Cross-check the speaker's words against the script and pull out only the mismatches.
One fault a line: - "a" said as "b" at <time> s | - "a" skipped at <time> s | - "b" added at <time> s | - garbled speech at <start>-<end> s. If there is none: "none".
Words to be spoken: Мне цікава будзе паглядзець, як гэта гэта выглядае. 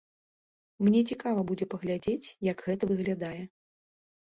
- "гэта" skipped at 2.8 s